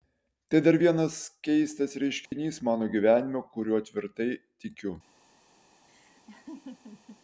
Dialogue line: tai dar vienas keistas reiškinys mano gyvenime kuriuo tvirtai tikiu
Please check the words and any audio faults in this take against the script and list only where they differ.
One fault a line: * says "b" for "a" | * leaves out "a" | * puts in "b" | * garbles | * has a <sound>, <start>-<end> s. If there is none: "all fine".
* has a dropout, 2.3-2.3 s
* has a laugh, 5.9-7.2 s